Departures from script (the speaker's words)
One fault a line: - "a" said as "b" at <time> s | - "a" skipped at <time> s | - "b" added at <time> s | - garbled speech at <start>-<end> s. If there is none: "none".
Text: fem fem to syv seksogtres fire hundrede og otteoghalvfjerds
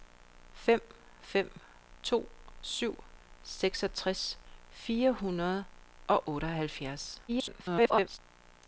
- garbled speech at 7.3-8.2 s